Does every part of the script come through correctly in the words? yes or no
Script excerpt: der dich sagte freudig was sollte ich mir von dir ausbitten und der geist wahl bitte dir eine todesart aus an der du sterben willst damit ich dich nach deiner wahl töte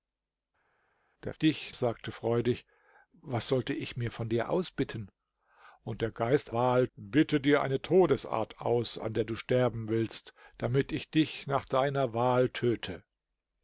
yes